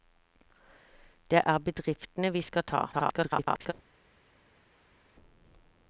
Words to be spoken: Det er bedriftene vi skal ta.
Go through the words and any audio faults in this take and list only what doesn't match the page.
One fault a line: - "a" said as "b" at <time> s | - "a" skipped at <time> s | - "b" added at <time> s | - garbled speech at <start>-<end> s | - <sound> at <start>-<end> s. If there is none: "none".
- garbled speech at 2.9-3.7 s